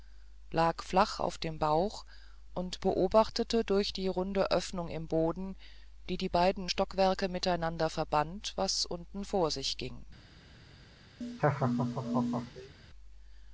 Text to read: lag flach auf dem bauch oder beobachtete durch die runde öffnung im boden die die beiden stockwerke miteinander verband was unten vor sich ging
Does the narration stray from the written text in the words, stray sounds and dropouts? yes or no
yes